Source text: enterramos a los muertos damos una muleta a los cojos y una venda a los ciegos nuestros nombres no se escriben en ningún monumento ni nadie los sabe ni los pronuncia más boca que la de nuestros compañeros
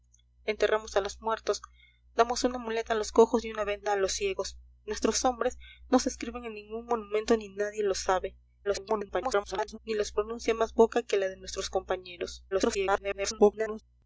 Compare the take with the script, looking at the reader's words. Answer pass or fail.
fail